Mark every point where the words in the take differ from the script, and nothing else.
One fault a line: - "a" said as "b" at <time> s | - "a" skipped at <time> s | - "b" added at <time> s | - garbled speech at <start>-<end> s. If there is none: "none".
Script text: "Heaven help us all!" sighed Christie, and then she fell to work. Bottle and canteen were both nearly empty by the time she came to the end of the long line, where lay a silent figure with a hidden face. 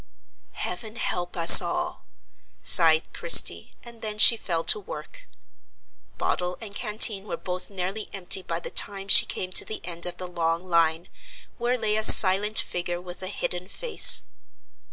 none